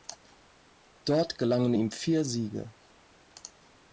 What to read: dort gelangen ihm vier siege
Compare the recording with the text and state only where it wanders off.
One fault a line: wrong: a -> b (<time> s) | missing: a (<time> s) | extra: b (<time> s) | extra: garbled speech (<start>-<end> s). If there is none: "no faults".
no faults